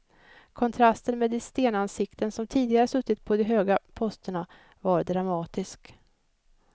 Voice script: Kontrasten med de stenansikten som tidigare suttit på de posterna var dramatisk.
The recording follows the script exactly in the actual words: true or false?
false